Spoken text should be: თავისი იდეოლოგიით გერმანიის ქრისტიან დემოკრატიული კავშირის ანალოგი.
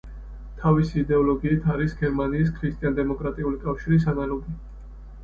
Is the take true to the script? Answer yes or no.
no